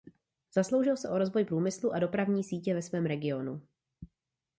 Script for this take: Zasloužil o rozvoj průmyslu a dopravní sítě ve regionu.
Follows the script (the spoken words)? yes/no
no